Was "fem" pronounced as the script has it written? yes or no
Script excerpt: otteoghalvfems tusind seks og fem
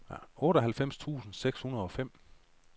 yes